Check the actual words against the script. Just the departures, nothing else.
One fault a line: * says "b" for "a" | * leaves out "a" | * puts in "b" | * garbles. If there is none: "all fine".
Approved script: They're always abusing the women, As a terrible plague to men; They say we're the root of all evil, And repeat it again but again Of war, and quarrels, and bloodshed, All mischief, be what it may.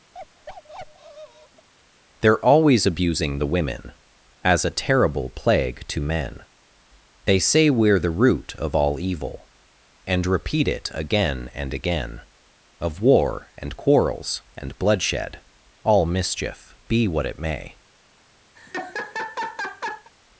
* says "and" for "but"